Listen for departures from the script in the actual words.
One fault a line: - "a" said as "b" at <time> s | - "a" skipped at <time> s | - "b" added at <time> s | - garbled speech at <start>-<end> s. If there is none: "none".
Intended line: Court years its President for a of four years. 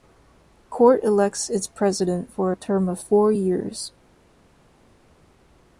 - "years" said as "elects" at 1.0 s
- "term" added at 2.5 s